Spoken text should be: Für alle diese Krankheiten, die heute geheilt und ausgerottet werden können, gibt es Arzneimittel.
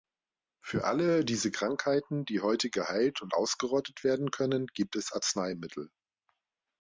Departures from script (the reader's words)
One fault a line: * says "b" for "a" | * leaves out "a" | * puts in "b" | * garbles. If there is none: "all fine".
all fine